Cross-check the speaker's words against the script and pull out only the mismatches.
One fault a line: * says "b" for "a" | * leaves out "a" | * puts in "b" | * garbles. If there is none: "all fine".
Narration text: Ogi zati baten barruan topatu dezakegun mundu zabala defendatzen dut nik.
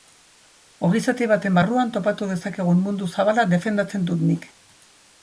all fine